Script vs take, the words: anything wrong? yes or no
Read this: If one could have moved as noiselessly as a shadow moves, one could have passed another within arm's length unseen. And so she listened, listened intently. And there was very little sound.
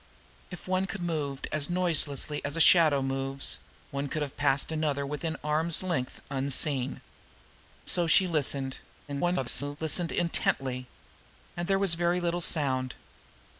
yes